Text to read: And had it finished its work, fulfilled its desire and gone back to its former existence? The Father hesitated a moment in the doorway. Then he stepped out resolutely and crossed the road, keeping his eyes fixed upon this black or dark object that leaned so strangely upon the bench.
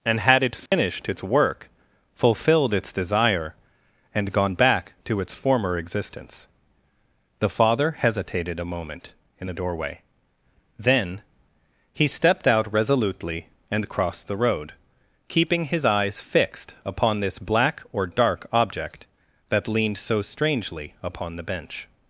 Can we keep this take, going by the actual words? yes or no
yes